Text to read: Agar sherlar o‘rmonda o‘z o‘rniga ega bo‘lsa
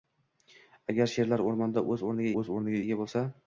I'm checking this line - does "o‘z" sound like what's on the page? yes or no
yes